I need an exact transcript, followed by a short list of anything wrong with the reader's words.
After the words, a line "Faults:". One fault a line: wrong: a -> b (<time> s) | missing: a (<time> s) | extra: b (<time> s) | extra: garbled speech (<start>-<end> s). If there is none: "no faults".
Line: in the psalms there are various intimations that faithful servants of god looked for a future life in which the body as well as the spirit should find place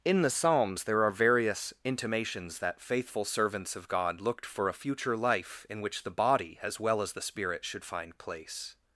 in the psalms there are various intimations that faithful servants of god looked for a future life in which the body as well as the spirit should find place
Faults:
no faults